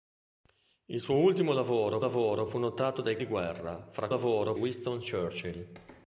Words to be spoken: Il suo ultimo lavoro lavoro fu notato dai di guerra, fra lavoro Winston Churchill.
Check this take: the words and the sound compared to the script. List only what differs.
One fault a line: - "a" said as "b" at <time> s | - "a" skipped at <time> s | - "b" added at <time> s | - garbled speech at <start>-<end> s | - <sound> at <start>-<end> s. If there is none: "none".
none